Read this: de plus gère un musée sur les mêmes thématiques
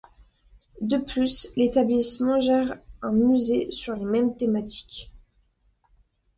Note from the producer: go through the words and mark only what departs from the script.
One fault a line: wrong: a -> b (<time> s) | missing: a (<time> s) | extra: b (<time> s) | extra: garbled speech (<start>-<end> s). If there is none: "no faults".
extra: l'établissement (1.6 s)